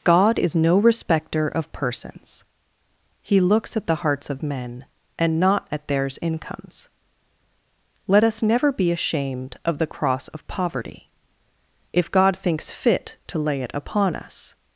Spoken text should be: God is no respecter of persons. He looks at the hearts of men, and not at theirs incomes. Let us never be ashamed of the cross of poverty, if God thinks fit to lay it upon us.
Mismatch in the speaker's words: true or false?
false